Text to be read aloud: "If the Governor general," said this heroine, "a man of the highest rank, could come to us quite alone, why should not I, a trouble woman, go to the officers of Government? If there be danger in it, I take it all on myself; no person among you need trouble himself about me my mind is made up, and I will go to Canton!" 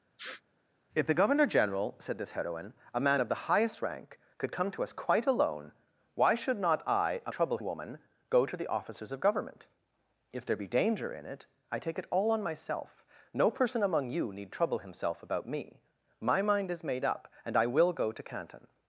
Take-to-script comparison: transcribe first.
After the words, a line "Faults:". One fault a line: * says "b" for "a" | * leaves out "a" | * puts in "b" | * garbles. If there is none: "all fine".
"If the Governor general," said this heroine, "a man of the highest rank, could come to us quite alone, why should not I, a trouble woman, go to the officers of Government? If there be danger in it, I take it all on myself; no person among you need trouble himself about me my mind is made up, and I will go to Canton!"
Faults:
all fine